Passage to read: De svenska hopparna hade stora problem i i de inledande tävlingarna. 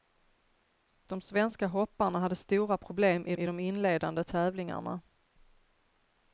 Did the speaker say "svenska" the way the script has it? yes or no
yes